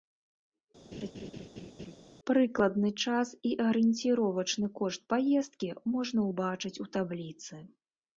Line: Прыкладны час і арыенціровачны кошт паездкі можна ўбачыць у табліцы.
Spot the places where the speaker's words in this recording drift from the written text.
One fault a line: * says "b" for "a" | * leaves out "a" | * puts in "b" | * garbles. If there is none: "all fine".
all fine